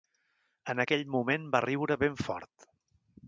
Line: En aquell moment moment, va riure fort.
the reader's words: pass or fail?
fail